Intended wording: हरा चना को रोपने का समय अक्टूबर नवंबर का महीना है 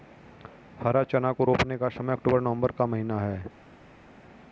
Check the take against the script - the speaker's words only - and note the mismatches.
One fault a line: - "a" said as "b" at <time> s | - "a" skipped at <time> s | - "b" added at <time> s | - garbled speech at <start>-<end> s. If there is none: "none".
none